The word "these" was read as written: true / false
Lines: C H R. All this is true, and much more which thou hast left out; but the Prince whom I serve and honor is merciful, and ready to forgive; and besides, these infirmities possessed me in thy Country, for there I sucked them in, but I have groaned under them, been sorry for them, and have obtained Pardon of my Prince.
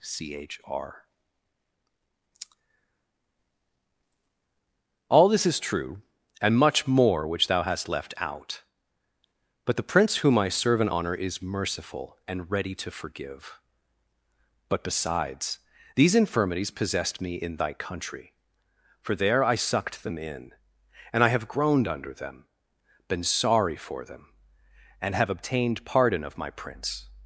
true